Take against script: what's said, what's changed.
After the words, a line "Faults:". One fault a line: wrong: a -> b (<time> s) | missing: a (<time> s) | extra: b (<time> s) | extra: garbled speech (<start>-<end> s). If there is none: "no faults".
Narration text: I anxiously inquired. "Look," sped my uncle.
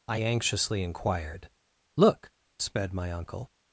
I anxiously inquired. "Look," sped my uncle.
Faults:
no faults